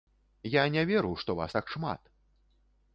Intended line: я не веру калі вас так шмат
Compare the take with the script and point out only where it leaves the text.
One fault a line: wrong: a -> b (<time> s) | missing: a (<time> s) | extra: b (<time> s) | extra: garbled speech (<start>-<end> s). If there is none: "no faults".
wrong: калі -> што (1.2 s)